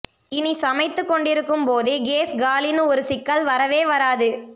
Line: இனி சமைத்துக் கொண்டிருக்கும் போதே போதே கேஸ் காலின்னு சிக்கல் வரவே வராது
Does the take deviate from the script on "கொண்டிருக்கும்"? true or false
false